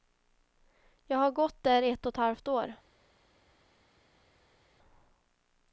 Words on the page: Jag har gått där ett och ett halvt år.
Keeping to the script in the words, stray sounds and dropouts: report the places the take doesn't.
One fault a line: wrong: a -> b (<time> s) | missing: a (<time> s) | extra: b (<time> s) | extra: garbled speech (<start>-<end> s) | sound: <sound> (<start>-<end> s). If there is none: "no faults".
no faults